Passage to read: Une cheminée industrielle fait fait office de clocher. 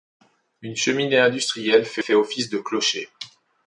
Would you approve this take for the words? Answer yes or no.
yes